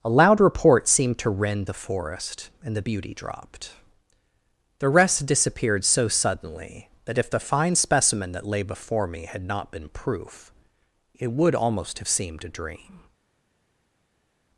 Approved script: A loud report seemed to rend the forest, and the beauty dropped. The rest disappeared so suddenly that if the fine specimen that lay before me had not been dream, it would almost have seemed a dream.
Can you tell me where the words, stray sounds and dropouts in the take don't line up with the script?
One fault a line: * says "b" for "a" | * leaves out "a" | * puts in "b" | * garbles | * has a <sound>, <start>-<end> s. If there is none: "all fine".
* says "proof" for "dream"